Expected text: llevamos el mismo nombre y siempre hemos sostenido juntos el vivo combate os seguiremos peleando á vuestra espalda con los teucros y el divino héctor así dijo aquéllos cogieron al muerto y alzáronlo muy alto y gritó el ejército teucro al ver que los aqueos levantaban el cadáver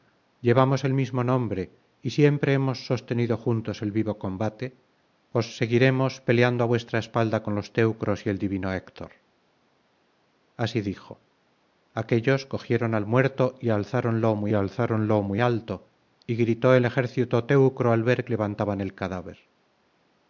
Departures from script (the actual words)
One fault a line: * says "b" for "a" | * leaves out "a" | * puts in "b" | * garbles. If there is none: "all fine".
* puts in "alzáronlo muy"
* leaves out "que los aqueos"